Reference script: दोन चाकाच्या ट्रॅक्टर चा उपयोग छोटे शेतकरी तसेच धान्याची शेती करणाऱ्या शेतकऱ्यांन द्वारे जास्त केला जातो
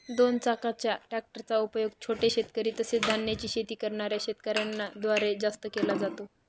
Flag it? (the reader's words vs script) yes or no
no